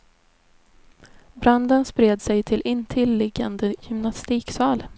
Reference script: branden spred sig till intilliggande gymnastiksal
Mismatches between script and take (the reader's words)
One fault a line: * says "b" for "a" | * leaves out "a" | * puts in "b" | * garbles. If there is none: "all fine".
all fine